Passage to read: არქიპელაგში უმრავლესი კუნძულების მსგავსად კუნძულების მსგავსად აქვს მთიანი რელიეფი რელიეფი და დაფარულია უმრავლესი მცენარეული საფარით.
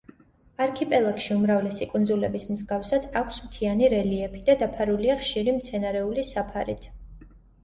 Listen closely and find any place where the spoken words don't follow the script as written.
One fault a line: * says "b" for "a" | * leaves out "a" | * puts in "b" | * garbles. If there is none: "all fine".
* leaves out "კუნძულების მსგავსად"
* leaves out "რელიეფი"
* says "ხშირი" for "უმრავლესი"